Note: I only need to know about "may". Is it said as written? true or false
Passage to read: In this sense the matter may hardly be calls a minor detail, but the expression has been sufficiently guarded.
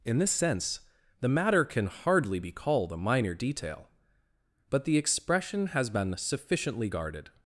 false